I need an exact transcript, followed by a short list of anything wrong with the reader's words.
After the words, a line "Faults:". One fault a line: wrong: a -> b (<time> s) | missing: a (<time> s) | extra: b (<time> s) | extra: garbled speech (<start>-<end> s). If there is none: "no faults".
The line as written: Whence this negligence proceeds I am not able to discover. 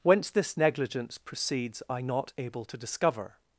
Whence this negligence proceeds I not able to discover.
Faults:
missing: am (2.0 s)